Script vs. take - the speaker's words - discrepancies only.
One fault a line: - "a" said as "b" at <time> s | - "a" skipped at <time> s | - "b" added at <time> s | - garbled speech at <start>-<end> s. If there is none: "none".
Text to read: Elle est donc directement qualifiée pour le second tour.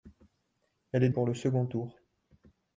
- "donc directement qualifiée" skipped at 1.1 s